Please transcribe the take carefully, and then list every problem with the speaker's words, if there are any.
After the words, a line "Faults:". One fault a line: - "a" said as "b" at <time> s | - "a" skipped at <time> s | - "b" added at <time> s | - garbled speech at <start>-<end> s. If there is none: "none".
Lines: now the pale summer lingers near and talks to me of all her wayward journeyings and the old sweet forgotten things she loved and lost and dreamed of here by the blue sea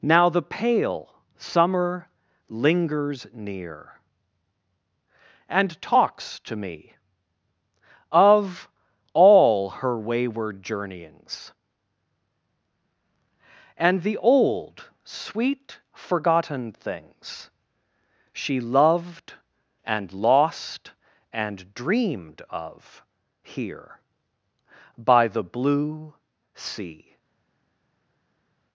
now the pale summer lingers near and talks to me of all her wayward journeyings and the old sweet forgotten things she loved and lost and dreamed of here by the blue sea
Faults:
none